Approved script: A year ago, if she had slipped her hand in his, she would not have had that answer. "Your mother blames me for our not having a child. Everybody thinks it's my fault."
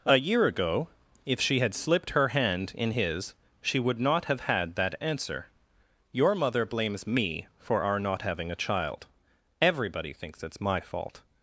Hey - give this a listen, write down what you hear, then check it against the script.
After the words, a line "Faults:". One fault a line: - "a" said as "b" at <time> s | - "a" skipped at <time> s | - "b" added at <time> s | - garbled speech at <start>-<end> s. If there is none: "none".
A year ago, if she had slipped her hand in his, she would not have had that answer. "Your mother blames me for our not having a child. Everybody thinks it's my fault."
Faults:
none